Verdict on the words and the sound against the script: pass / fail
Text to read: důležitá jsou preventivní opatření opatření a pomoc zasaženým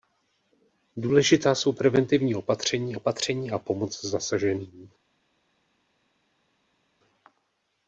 pass